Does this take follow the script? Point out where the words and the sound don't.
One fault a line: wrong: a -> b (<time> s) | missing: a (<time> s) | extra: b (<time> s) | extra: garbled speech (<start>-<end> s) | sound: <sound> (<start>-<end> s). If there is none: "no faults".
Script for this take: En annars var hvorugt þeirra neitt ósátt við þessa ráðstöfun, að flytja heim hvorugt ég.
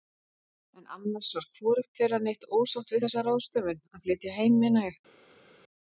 wrong: hvorugt -> meina (4.6 s)